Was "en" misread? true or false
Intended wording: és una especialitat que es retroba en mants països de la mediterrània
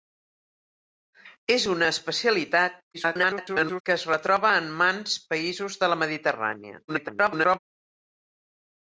false